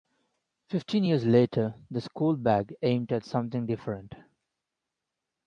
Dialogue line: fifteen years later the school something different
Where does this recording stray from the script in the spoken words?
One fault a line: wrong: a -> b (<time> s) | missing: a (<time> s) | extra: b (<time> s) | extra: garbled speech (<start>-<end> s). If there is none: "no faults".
extra: bag aimed at (2.4 s)